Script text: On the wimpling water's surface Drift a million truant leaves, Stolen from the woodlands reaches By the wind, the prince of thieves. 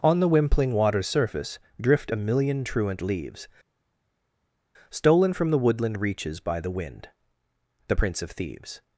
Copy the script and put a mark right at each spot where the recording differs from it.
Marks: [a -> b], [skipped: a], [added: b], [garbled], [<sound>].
On the wimpling water's surface Drift a million truant leaves, Stolen from the [woodlands -> woodland] reaches By the wind, the prince of thieves.